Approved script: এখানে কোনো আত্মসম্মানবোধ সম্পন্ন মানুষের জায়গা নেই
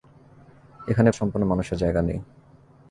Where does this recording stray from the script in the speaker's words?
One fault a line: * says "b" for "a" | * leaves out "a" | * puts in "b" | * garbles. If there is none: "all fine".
* leaves out "কোনো আত্মসম্মানবোধ"